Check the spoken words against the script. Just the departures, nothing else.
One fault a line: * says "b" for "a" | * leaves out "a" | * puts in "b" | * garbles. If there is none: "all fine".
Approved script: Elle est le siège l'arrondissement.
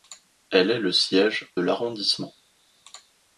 all fine